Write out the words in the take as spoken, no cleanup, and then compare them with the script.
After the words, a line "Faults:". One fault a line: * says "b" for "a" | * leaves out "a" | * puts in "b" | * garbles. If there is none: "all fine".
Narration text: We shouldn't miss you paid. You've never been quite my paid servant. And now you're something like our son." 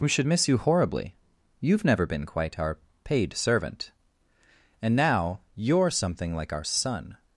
We should miss you horribly. You've never been quite our paid servant. And now you're something like our son."
Faults:
* says "should" for "shouldn't"
* says "horribly" for "paid"
* says "our" for "my"